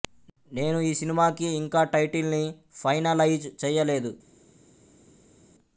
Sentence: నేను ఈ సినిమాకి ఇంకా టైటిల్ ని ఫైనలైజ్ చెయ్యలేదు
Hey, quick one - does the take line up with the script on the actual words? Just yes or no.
yes